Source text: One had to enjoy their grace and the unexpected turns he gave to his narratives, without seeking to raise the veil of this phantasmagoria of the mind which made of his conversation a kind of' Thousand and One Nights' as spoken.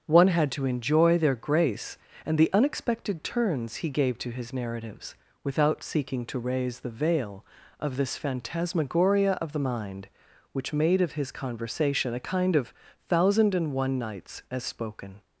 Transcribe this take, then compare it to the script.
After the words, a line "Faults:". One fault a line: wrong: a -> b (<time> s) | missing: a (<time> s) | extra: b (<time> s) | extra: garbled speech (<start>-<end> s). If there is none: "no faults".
One had to enjoy their grace and the unexpected turns he gave to his narratives, without seeking to raise the veil of this phantasmagoria of the mind which made of his conversation a kind of' Thousand and One Nights' as spoken.
Faults:
no faults